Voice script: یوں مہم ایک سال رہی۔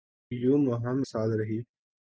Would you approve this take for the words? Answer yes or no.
no